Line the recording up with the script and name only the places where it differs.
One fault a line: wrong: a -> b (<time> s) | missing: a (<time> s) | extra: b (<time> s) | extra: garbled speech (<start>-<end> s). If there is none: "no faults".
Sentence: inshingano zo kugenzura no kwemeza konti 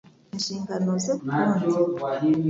missing: kugenzura no kwemeza (1.1 s)